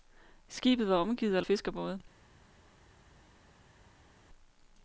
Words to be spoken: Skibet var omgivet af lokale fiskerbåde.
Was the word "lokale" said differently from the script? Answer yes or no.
yes